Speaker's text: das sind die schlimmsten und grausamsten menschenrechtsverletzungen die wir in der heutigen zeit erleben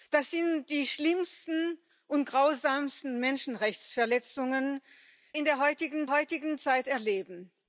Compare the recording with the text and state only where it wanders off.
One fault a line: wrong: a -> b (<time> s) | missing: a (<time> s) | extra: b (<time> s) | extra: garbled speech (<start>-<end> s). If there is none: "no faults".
missing: die wir (4.8 s)
extra: heutigen (6.1 s)